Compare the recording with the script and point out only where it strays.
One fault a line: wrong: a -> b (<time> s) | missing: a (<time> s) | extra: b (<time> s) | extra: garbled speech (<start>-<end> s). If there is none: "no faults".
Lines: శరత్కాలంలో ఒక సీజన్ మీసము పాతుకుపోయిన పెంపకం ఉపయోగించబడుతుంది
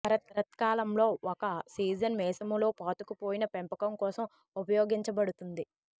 extra: లో (2.6 s)
extra: కోసం (4.0 s)